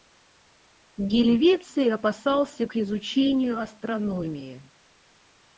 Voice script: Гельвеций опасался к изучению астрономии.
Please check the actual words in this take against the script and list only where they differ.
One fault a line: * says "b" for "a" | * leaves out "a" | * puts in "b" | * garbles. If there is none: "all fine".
all fine